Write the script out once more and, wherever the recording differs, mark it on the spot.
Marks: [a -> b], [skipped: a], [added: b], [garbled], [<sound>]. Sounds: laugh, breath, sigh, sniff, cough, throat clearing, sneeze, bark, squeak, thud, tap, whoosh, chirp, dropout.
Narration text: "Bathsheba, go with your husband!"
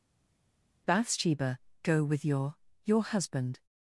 "Bathsheba, go with your [added: your] husband!"